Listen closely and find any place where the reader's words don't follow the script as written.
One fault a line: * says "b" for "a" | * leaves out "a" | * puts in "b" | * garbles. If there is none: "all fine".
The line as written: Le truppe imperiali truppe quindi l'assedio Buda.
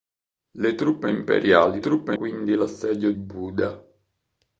all fine